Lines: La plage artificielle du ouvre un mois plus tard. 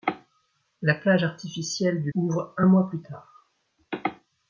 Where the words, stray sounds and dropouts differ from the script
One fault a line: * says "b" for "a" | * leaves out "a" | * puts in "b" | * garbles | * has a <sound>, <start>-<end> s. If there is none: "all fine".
all fine